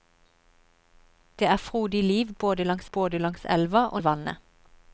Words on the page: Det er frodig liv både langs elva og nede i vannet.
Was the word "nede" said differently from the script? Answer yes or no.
yes